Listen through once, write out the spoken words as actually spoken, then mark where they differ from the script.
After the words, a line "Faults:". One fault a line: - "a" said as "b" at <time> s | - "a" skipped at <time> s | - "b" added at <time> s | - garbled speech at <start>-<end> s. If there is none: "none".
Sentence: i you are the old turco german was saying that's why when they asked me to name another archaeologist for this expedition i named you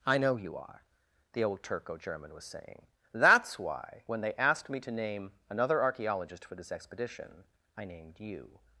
i know you are the old turco german was saying that's why when they asked me to name another archaeologist for this expedition i named you
Faults:
- "know" added at 0.2 s